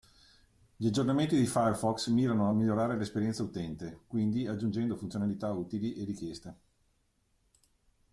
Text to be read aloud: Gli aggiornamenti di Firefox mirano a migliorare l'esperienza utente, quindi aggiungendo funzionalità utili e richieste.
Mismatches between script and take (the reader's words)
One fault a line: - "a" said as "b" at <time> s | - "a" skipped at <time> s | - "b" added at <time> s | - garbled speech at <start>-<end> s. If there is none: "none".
none